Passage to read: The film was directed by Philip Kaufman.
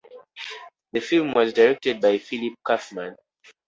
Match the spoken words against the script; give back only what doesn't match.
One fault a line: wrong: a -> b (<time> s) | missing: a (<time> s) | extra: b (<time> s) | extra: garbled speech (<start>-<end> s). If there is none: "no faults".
no faults